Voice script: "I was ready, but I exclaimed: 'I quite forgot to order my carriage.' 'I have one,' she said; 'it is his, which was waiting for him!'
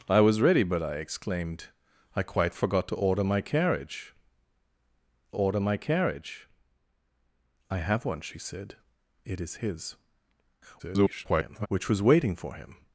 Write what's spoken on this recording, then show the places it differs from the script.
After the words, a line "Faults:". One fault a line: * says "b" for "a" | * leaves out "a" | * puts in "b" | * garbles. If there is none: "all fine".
"I was ready, but I exclaimed: 'I quite forgot to order my carriage order my carriage.' 'I have one,' she said; 'it is his, [garbled] which was waiting for him!'
Faults:
* puts in "order my carriage"
* garbles